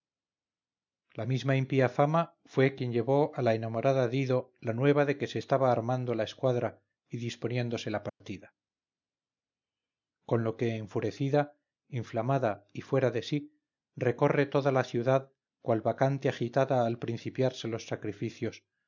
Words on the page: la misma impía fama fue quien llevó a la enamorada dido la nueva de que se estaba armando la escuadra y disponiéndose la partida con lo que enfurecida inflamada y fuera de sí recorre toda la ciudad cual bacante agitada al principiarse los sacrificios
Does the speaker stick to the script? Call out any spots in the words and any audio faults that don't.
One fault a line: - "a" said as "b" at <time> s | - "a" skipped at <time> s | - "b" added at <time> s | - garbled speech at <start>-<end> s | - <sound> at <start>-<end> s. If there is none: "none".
- dropout at 8.1-8.2 s